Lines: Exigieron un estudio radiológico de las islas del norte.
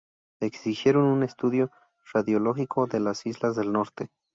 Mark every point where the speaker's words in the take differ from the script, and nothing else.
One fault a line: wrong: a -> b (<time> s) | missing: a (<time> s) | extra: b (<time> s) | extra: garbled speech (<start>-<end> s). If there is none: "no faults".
no faults